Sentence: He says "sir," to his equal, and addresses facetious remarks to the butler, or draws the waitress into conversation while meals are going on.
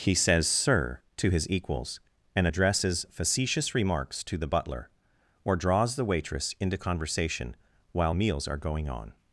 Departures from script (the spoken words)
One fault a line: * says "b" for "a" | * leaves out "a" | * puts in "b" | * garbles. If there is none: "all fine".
* says "equals" for "equal"